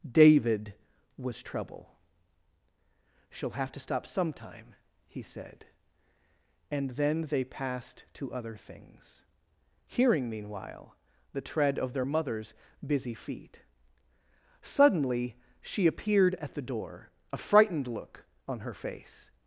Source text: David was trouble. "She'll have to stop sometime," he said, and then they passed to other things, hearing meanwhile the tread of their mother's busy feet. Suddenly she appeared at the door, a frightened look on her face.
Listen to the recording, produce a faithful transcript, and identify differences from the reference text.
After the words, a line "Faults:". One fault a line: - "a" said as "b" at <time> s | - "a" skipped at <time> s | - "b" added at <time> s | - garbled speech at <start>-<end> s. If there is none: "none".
David was trouble. "She'll have to stop sometime," he said, and then they passed to other things, hearing meanwhile the tread of their mother's busy feet. Suddenly she appeared at the door, a frightened look on her face.
Faults:
none